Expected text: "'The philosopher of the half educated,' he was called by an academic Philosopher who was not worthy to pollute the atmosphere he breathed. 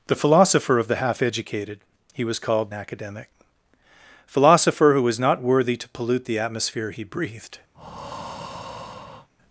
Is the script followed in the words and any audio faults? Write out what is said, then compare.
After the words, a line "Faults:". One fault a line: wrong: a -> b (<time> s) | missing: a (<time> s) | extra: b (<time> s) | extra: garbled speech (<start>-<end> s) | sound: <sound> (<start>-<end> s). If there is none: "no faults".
"'The philosopher of the half educated,' he was called academic Philosopher who was not worthy to pollute the atmosphere he breathed.
Faults:
missing: by an (2.7 s)
sound: breath (7.7-9.3 s)